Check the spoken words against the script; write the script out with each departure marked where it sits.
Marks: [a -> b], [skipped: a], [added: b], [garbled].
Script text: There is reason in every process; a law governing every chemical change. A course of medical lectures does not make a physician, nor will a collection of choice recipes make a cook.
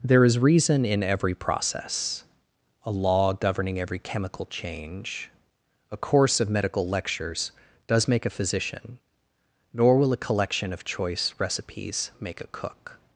There is reason in every process; a law governing every chemical change. A course of medical lectures does [skipped: not] make a physician, nor will a collection of choice recipes make a cook.